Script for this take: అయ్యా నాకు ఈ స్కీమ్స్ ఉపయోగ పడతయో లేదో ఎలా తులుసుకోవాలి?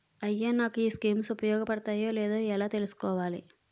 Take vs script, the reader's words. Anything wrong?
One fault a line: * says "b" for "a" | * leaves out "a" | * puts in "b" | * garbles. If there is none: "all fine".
all fine